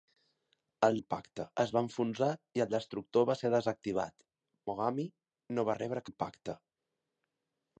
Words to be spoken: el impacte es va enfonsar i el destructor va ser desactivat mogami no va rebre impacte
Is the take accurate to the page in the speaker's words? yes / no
yes